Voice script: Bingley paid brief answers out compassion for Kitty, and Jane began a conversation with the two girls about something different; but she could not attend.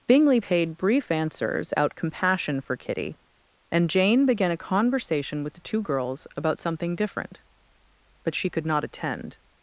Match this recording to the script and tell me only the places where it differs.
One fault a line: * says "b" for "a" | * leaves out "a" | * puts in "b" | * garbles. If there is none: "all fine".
all fine